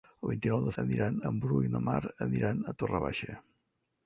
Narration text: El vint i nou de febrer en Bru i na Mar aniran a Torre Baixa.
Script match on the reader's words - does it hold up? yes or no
no